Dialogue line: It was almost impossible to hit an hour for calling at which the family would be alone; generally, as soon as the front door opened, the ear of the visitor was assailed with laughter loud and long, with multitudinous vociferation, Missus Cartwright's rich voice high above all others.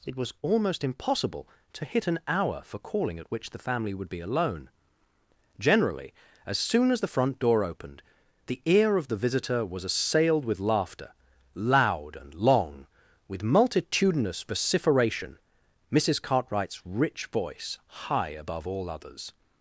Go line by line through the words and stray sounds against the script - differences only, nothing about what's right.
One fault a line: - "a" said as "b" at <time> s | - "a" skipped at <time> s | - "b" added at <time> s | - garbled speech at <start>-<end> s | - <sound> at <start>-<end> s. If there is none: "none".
none